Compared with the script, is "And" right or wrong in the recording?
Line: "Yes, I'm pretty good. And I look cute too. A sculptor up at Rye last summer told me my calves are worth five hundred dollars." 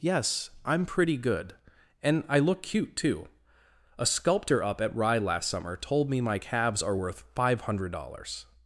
right